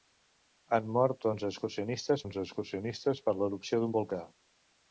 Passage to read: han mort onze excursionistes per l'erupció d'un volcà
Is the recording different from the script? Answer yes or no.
yes